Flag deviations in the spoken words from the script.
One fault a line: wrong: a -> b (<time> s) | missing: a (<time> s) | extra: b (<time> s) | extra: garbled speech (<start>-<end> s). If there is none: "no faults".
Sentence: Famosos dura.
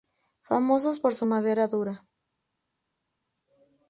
extra: por su madera (1.0 s)